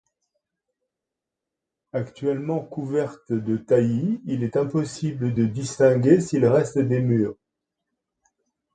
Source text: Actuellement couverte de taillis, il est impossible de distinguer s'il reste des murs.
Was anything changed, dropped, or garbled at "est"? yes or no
no